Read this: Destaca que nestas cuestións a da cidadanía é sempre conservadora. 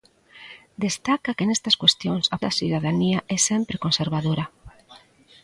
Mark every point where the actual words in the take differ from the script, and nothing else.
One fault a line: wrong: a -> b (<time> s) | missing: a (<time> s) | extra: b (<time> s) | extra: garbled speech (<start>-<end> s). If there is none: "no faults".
no faults